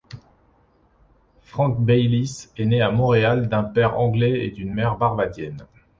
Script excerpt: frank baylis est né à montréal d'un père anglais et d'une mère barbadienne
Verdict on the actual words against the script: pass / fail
pass